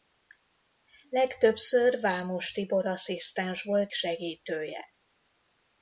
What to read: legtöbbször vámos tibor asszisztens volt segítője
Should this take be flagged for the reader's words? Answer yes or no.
no